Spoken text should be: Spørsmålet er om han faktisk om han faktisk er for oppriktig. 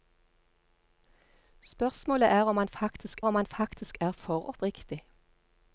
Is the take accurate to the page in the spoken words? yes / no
yes